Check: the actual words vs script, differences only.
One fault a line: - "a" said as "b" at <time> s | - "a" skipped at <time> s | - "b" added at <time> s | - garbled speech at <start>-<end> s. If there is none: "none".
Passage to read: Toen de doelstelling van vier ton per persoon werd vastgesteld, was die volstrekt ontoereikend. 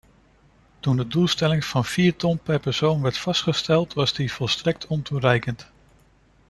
none